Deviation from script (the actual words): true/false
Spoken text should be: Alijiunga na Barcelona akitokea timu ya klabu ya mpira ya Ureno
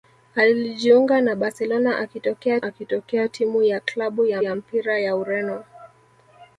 true